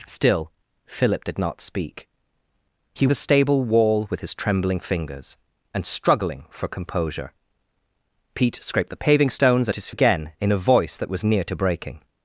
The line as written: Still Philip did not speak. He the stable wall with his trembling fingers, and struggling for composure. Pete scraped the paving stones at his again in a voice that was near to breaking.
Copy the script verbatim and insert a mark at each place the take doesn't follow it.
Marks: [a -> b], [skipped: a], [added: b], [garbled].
Still Philip did not speak. He the stable wall with his trembling fingers, and struggling for composure. Pete scraped the paving stones at his again in a voice that was near to breaking.